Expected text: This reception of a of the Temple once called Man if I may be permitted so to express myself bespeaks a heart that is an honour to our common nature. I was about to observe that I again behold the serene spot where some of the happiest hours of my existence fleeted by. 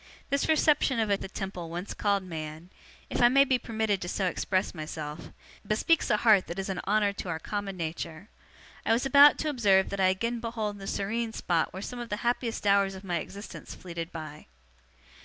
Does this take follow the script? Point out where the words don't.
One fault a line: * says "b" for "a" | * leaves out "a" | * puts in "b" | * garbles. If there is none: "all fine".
all fine